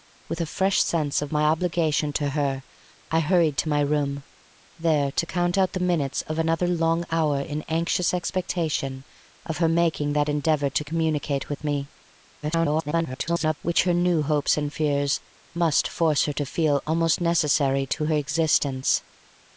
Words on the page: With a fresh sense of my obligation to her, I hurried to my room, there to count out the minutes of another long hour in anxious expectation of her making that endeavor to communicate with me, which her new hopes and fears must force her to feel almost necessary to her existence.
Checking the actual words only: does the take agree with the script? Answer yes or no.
no